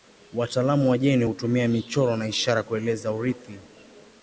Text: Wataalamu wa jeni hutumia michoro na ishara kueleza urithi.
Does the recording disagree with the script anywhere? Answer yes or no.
no